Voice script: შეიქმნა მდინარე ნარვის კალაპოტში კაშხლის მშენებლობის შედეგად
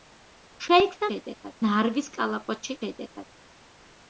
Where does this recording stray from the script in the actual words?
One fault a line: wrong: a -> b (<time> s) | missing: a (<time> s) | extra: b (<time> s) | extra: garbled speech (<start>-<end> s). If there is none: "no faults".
wrong: მდინარე -> შედეგად (1.1 s)
missing: კაშხლის მშენებლობის (2.8 s)